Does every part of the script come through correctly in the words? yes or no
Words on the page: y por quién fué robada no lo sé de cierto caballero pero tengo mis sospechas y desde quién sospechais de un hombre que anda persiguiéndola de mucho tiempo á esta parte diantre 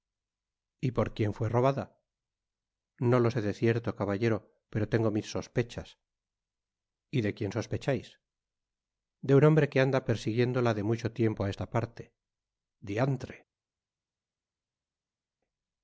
no